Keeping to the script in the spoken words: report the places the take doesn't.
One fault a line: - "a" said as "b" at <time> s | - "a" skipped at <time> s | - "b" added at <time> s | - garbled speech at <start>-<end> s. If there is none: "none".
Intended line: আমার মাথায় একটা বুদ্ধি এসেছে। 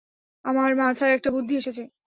none